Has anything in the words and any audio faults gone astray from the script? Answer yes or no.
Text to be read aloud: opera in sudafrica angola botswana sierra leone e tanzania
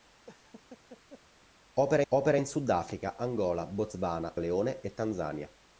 yes